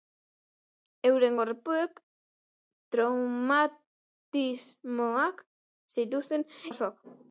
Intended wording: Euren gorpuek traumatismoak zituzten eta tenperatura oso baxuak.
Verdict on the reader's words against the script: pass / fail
fail